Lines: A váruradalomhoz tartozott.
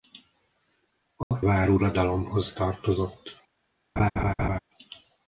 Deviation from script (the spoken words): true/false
false